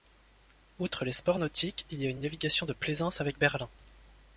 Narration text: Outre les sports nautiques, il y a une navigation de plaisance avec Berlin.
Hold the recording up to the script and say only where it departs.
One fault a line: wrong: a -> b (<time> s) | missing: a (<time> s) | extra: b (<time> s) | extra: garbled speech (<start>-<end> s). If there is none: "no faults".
extra: une (2.1 s)